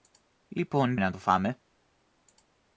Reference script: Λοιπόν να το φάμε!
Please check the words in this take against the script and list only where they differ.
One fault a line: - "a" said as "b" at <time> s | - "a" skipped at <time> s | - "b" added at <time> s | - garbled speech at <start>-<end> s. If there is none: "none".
none